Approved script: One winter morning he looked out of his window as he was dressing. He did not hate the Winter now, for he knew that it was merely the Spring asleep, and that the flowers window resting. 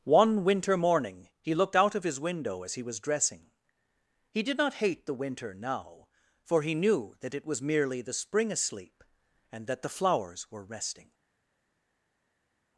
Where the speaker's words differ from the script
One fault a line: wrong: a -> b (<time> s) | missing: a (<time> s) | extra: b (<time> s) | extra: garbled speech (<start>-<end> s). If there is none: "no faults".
wrong: window -> were (10.5 s)